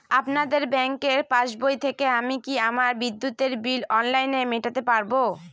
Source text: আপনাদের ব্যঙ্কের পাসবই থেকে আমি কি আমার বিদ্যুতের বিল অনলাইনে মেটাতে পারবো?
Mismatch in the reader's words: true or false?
false